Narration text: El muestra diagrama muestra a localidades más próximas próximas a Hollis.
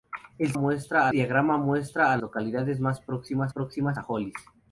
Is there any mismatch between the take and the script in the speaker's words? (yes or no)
no